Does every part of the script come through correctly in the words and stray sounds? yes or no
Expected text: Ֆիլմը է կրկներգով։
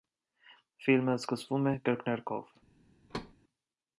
no